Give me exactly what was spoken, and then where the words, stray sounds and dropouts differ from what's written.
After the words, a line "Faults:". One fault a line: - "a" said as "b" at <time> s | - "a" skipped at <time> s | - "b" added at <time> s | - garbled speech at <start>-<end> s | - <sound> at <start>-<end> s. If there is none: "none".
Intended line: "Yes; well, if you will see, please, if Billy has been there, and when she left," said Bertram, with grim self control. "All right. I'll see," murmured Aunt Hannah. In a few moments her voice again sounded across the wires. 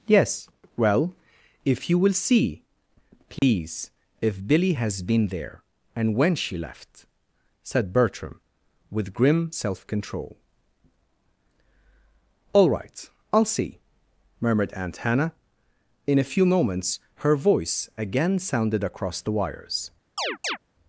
"Yes; well, if you will see, please, if Billy has been there, and when she left," said Bertram, with grim self control. "All right. I'll see," murmured Aunt Hannah. In a few moments her voice again sounded across the wires.
Faults:
- dropout at 3.4-3.4 s
- chirp at 20.2-20.6 s